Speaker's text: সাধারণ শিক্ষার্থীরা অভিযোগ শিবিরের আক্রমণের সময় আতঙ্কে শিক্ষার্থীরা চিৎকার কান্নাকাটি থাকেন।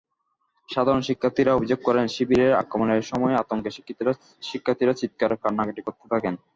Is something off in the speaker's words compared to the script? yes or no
yes